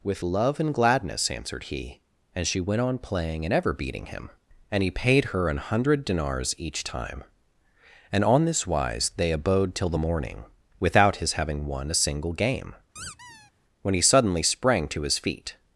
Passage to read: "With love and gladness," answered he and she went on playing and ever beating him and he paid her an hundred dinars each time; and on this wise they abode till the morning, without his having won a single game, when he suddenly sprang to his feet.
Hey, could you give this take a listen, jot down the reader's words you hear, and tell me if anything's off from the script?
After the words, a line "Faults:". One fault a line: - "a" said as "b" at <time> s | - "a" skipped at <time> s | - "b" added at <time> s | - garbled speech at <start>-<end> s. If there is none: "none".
"With love and gladness," answered he and she went on playing and ever beating him and he paid her an hundred dinars each time; and on this wise they abode till the morning, without his having won a single game, when he suddenly sprang to his feet.
Faults:
none